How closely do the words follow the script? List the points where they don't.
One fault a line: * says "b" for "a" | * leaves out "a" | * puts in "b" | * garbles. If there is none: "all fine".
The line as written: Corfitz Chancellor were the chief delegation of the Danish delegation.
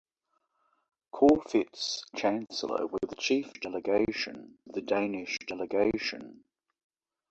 all fine